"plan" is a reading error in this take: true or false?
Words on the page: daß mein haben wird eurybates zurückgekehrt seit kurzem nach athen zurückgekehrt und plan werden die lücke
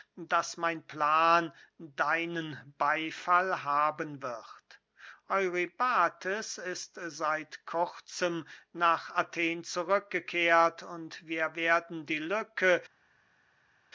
true